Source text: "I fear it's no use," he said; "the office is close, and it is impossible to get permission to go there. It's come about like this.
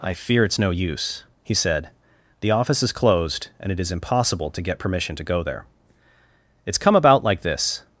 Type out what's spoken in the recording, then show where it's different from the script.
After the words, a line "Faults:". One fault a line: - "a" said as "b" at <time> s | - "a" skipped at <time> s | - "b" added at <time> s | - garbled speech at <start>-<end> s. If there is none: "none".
"I fear it's no use," he said; "the office is closed, and it is impossible to get permission to go there. It's come about like this.
Faults:
- "close" said as "closed" at 2.9 s